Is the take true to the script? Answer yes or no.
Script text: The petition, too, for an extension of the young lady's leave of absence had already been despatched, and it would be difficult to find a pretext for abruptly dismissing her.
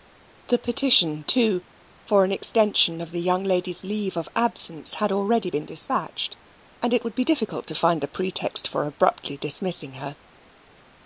yes